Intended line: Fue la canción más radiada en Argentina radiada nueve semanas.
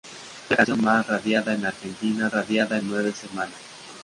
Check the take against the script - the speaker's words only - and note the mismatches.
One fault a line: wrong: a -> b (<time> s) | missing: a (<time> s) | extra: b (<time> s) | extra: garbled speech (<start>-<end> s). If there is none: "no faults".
no faults